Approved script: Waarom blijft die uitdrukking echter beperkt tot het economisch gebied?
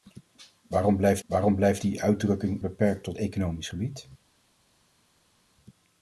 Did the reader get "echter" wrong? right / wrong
wrong